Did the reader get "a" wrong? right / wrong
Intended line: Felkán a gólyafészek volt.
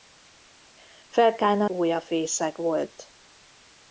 right